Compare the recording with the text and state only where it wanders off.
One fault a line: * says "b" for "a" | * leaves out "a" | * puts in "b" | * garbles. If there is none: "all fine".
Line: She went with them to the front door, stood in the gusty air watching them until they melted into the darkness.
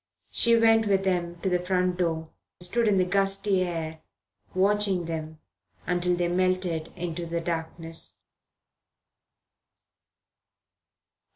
all fine